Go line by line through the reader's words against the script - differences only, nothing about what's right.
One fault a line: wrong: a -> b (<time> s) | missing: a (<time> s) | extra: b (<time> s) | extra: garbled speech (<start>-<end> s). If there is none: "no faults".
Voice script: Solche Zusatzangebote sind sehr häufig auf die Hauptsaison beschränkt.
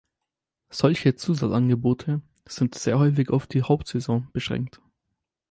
no faults